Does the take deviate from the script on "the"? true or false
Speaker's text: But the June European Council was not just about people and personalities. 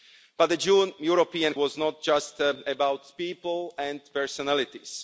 false